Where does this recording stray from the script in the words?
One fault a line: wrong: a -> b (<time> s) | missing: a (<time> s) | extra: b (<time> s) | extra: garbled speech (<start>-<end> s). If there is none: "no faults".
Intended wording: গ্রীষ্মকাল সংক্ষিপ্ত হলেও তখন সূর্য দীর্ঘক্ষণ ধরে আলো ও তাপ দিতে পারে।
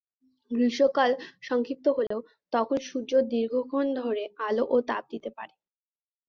no faults